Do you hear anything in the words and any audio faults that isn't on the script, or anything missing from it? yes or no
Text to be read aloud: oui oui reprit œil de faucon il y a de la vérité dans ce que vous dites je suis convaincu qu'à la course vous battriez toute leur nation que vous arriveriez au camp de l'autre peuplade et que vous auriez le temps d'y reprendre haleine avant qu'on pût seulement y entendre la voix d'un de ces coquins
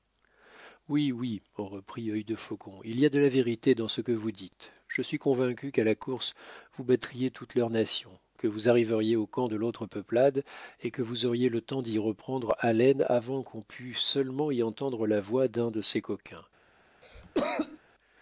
yes